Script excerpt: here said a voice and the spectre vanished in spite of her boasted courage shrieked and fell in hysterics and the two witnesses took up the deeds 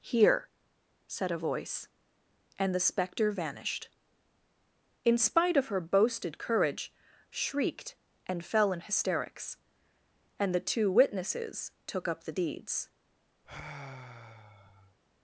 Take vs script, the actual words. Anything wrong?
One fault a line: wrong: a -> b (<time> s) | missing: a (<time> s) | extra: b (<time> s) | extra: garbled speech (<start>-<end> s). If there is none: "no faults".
no faults